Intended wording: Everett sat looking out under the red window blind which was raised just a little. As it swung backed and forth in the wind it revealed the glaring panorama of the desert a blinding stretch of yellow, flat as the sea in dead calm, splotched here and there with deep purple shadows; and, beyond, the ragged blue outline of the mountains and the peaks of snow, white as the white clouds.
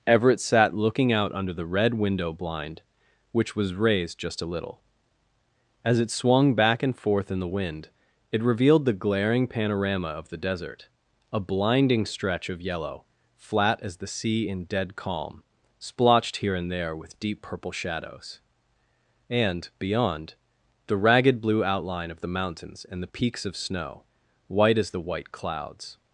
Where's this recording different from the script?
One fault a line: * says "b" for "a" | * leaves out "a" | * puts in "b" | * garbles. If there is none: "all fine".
* says "back" for "backed"